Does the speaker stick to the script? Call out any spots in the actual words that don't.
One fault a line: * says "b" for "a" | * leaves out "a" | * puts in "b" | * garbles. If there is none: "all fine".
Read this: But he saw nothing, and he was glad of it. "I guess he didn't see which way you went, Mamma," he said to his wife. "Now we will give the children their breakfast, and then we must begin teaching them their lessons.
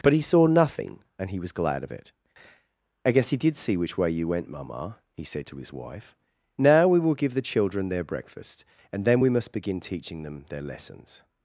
* says "did" for "didn't"